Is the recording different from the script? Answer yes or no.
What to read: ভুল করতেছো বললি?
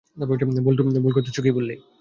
yes